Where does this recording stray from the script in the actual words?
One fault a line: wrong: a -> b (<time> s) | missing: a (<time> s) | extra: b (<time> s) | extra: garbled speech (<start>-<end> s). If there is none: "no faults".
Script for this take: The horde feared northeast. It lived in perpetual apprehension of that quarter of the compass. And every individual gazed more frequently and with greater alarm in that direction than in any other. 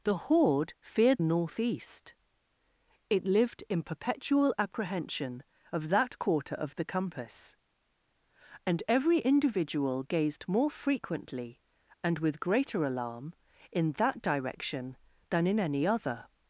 no faults